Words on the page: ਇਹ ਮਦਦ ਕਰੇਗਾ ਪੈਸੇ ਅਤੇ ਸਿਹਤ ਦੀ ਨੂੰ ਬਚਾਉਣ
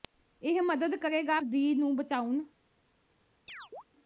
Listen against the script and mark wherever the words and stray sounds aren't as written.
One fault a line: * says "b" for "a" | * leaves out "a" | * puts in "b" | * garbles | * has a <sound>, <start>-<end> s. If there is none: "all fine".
* leaves out "ਪੈਸੇ ਅਤੇ ਸਿਹਤ"
* has a chirp, 3.5-3.8 s